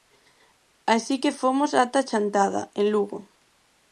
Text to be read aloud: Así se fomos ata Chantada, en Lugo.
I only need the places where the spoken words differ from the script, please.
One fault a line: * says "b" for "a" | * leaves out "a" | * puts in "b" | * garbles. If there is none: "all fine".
* says "que" for "se"